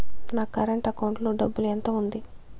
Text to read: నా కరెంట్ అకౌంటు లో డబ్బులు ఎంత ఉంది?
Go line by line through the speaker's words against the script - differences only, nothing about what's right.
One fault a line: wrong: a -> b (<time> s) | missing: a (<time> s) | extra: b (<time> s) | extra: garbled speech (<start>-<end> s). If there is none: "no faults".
no faults